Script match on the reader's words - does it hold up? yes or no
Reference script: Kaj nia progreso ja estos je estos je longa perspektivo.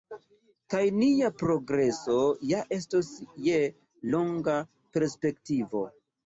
no